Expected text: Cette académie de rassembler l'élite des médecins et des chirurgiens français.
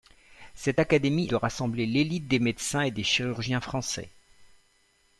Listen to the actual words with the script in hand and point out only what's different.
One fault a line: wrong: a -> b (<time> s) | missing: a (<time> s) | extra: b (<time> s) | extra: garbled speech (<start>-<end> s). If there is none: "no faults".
no faults